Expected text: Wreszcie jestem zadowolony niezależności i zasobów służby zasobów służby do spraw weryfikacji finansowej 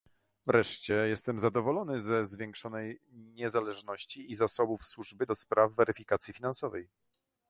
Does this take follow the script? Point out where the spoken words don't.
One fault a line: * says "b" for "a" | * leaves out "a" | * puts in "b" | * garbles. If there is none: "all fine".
* puts in "ze zwiększonej"
* leaves out "zasobów służby"